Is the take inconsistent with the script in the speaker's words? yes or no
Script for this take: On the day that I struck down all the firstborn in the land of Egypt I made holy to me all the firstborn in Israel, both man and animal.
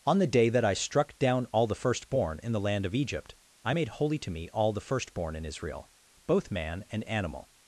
no